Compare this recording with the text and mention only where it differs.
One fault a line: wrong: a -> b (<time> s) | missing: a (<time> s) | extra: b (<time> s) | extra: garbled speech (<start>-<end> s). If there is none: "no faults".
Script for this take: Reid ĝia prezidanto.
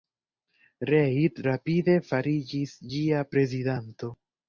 extra: rapide fariĝis (1.5 s)